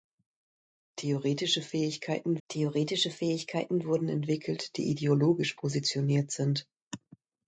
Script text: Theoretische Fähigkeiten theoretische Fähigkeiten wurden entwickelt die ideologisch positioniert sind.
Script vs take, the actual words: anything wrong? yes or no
no